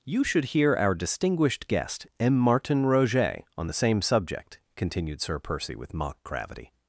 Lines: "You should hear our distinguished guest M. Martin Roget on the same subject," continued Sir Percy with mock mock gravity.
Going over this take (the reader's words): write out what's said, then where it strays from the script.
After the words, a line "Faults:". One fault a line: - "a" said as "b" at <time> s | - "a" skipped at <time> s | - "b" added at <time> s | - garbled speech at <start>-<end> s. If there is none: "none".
"You should hear our distinguished guest M. Martin Roget on the same subject," continued Sir Percy with mock gravity.
Faults:
- "mock" skipped at 6.2 s